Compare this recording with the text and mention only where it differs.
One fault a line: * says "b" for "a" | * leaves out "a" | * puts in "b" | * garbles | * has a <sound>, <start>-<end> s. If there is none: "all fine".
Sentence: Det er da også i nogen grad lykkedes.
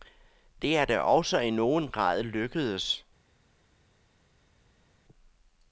all fine